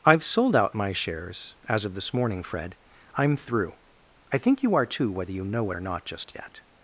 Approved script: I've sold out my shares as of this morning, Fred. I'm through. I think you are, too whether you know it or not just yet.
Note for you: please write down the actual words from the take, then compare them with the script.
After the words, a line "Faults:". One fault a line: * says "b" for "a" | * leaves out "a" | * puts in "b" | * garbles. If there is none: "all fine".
I've sold out my shares as of this morning, Fred. I'm through. I think you are, too whether you know it or not just yet.
Faults:
all fine